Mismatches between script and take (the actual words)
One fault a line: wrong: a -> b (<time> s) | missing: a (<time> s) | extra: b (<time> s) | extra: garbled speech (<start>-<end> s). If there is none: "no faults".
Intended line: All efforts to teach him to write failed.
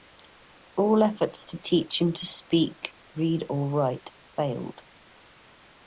extra: speak read or (2.3 s)